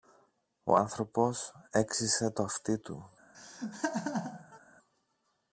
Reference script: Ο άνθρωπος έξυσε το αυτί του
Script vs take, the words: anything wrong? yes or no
no